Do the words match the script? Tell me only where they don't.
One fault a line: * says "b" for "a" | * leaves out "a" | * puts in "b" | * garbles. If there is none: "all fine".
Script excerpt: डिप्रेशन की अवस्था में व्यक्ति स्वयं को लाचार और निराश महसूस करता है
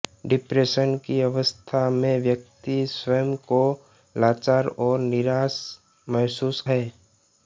* leaves out "करता"